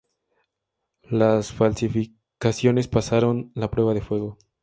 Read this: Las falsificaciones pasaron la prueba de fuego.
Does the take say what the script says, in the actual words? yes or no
yes